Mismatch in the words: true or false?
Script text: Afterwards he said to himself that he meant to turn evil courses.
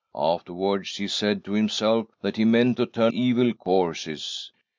false